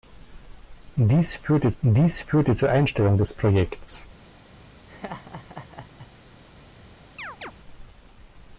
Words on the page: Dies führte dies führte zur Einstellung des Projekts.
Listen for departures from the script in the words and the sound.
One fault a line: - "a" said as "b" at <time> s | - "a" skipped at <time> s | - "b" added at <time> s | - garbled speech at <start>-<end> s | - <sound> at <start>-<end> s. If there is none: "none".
- laugh at 4.9-6.1 s
- chirp at 7.2-7.5 s